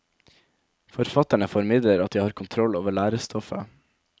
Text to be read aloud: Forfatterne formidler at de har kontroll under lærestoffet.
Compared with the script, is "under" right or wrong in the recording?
wrong